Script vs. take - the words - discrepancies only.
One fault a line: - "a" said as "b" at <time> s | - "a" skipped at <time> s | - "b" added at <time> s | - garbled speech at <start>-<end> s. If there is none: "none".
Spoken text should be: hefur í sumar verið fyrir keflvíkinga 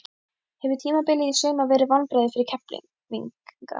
- "tímabilið" added at 0.8 s
- "vonbrigði" added at 1.9 s